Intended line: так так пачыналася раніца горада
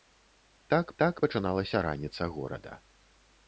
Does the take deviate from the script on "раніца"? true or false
false